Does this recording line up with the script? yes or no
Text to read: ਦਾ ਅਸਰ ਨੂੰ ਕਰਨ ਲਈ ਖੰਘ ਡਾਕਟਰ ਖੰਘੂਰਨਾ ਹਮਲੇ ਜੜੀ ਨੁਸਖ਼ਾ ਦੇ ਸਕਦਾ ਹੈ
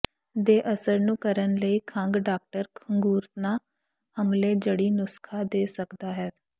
no